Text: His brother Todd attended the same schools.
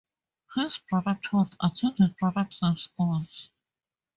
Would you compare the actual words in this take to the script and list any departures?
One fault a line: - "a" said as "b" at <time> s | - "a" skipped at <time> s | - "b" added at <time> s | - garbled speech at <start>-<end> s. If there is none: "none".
- "the" said as "brother" at 2.2 s